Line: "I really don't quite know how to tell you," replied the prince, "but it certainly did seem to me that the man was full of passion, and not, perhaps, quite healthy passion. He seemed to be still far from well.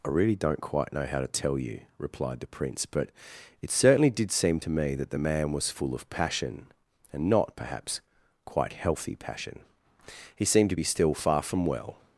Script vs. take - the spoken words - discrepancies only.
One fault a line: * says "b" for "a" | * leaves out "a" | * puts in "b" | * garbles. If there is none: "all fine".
all fine